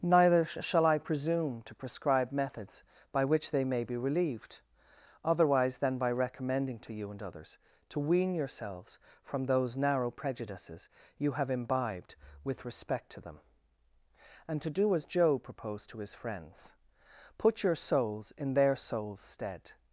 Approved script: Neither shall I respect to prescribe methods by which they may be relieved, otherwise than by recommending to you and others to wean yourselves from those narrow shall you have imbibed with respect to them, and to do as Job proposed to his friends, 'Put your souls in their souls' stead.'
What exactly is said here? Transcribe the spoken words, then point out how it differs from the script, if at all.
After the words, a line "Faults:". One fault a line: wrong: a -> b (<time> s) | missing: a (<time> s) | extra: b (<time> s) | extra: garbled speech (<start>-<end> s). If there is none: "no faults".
Neither shall I presume to prescribe methods by which they may be relieved, otherwise than by recommending to you and others to wean yourselves from those narrow prejudices you have imbibed with respect to them, and to do as Job proposed to his friends, 'Put your souls in their souls' stead.'
Faults:
wrong: respect -> presume (1.0 s)
wrong: shall -> prejudices (10.1 s)